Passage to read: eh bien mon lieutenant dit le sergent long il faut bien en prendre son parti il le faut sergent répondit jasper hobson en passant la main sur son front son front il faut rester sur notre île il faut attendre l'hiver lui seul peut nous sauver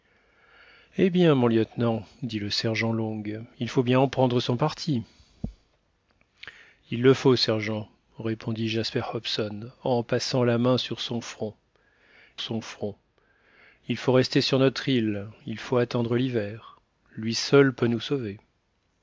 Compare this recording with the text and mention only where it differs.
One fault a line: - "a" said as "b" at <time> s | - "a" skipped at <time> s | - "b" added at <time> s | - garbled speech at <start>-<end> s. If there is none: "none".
none